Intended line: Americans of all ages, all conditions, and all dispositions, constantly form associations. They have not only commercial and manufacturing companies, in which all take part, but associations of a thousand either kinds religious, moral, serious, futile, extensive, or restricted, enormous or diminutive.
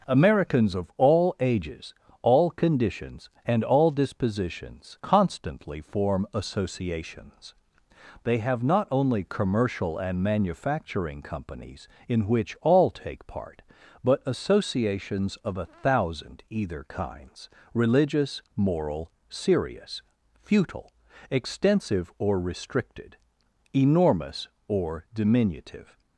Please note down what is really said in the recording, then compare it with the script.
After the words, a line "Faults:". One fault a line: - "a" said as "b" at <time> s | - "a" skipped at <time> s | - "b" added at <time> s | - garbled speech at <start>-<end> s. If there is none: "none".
Americans of all ages, all conditions, and all dispositions, constantly form associations. They have not only commercial and manufacturing companies, in which all take part, but associations of a thousand either kinds religious, moral, serious, futile, extensive, or restricted, enormous or diminutive.
Faults:
none